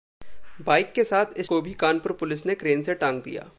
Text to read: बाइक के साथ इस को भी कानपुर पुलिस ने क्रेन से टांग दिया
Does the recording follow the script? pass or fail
pass